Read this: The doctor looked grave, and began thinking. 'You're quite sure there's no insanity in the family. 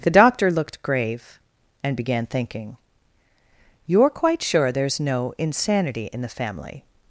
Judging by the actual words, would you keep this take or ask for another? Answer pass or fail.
pass